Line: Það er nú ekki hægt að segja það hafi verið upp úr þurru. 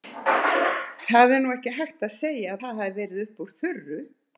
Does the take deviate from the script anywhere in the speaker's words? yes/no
no